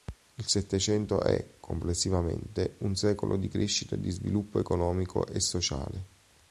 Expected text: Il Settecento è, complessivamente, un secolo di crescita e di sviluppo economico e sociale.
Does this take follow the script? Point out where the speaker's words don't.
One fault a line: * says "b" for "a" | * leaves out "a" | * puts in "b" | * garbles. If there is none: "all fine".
all fine